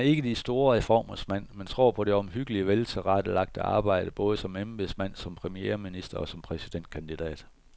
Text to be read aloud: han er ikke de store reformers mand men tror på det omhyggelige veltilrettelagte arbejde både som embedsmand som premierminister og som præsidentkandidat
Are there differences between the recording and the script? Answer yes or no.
no